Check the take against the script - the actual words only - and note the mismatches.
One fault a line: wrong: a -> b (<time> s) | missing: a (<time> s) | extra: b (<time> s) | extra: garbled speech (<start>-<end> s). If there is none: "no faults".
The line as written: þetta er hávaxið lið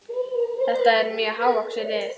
extra: mjög (1.2 s)